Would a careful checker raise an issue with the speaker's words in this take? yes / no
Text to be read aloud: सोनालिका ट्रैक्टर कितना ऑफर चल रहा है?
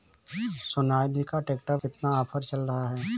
no